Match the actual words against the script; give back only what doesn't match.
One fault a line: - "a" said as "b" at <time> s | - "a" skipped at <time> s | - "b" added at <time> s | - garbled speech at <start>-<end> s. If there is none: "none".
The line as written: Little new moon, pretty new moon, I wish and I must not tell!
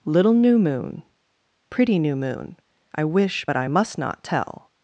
- "and" said as "but" at 3.5 s